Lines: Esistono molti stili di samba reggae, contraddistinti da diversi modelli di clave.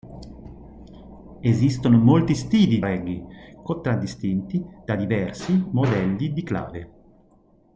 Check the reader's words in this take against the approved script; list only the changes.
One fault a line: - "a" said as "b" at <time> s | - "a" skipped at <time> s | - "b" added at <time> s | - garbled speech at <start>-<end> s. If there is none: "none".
- "di samba" skipped at 2.8 s